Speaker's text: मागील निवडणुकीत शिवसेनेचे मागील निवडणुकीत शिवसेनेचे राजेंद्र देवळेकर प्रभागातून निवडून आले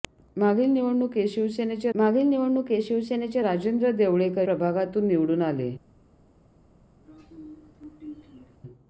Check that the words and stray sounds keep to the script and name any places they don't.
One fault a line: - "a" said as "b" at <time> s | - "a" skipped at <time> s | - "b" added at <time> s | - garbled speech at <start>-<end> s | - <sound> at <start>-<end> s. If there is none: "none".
- throat clearing at 7.1-8.6 s